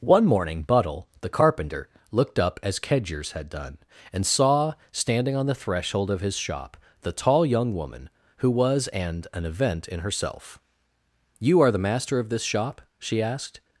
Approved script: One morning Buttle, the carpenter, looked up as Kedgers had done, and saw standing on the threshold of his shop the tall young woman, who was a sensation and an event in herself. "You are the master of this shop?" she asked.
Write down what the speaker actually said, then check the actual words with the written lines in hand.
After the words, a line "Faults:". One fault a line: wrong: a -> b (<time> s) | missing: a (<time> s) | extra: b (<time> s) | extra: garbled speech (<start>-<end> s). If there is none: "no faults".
One morning Buttle, the carpenter, looked up as Kedgers had done, and saw standing on the threshold of his shop the tall young woman, who was and an event in herself. "You are the master of this shop?" she asked.
Faults:
missing: a sensation (8.9 s)